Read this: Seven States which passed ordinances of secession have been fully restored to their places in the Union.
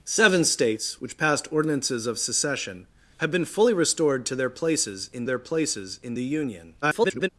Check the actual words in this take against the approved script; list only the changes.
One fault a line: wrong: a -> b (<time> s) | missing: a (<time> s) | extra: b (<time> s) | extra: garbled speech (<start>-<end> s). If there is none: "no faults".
extra: their places in (5.2 s)
extra: garbled speech (6.8-7.3 s)